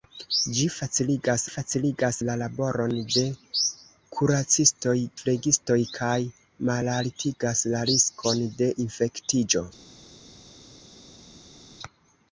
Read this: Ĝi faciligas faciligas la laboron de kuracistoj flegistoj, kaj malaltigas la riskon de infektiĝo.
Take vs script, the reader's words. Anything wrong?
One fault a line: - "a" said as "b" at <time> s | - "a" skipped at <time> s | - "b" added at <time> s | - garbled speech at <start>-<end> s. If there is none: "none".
none